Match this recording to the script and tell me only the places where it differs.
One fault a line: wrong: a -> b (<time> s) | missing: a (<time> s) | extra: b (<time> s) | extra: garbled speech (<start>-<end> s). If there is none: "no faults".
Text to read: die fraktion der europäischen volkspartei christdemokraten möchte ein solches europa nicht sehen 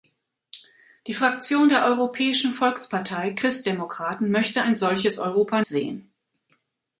missing: nicht (5.6 s)